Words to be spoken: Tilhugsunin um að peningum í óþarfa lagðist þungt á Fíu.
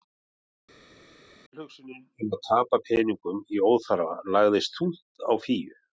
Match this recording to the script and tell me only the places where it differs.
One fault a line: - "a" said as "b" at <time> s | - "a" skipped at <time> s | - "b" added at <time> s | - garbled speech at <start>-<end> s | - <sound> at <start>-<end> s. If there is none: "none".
- "tapa" added at 2.5 s